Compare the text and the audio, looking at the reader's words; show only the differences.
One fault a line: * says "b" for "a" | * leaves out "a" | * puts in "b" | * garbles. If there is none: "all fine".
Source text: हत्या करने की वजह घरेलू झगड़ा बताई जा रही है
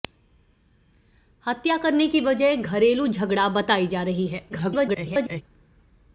* garbles